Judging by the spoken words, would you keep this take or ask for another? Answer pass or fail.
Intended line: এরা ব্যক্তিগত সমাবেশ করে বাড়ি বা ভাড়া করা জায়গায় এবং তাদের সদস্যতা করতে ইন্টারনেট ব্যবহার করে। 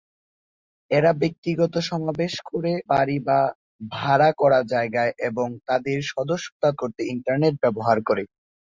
pass